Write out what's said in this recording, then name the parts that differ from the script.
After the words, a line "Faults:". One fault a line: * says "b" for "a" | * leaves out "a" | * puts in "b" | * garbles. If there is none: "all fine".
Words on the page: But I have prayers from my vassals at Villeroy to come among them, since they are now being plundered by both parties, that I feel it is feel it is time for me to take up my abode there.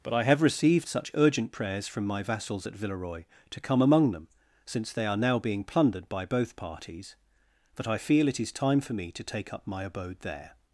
But I have received such urgent prayers from my vassals at Villeroy to come among them, since they are now being plundered by both parties, that I feel it is time for me to take up my abode there.
Faults:
* puts in "received such urgent"
* leaves out "feel it is"